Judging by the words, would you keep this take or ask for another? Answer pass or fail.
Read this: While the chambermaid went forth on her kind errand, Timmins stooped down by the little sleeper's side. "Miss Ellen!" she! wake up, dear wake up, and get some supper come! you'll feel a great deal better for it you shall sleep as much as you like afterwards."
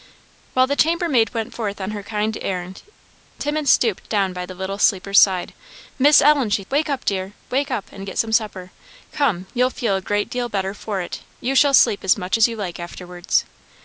pass